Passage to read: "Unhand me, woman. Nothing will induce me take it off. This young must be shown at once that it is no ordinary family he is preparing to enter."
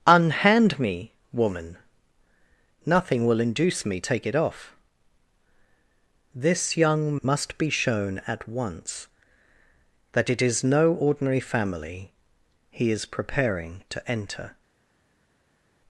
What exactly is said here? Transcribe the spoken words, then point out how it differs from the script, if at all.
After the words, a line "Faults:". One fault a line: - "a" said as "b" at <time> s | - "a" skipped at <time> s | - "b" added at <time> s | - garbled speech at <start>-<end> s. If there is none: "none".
"Unhand me, woman. Nothing will induce me take it off. This young must be shown at once that it is no ordinary family he is preparing to enter."
Faults:
none